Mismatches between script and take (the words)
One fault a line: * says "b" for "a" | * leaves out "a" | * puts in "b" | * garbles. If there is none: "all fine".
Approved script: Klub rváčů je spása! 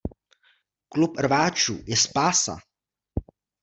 all fine